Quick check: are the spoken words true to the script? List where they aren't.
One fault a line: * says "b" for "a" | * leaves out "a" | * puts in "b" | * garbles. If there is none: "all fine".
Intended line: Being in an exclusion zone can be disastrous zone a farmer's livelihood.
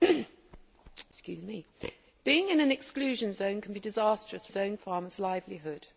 all fine